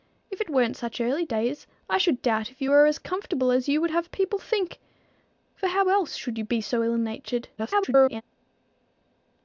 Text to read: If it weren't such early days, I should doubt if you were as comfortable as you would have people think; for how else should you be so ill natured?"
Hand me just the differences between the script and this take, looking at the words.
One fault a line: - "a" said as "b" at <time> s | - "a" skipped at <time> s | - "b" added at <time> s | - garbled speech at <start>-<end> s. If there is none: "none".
- garbled speech at 7.6-8.2 s